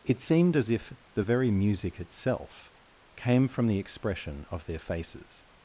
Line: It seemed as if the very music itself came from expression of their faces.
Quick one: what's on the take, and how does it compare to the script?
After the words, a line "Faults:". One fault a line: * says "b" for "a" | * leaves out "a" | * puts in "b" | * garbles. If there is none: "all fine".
It seemed as if the very music itself came from the expression of their faces.
Faults:
* puts in "the"